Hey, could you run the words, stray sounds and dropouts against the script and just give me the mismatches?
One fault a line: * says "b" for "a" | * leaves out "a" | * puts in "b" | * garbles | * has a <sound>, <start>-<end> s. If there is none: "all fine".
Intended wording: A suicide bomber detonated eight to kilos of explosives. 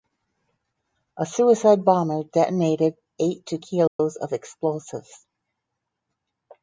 * has a dropout, 3.9-4.0 s